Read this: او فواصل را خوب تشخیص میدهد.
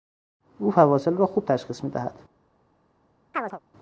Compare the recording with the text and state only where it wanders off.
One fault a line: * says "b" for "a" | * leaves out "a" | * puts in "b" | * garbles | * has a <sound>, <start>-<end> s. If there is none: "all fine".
* has a chirp, 3.3-3.6 s